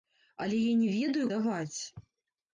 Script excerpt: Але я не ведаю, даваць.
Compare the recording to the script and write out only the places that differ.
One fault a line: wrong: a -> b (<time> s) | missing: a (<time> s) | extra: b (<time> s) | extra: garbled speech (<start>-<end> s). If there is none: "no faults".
no faults